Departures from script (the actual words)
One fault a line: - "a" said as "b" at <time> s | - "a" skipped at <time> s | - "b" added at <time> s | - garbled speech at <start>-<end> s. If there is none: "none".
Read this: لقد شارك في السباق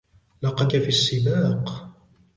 - "شارك" skipped at 0.7 s